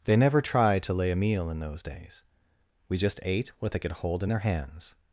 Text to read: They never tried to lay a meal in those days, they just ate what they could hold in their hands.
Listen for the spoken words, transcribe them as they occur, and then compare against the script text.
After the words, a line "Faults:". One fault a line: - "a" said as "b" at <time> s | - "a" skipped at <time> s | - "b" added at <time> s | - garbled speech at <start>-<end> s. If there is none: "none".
They never tried to lay a meal in those days, we just ate what they could hold in their hands.
Faults:
- "they" said as "we" at 2.9 s